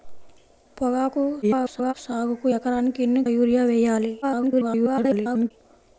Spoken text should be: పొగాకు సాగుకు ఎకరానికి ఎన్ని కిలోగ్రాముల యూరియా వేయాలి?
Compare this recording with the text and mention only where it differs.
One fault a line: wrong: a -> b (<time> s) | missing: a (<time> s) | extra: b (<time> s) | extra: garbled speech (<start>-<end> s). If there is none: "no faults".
extra: garbled speech (1.4-1.9 s)
missing: కిలోగ్రాముల (3.2 s)
extra: garbled speech (4.2-5.5 s)